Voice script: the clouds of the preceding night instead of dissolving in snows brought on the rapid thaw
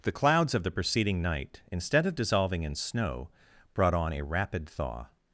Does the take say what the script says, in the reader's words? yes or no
no